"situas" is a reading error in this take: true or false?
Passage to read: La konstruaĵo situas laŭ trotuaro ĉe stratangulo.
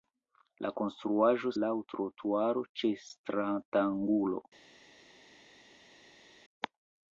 true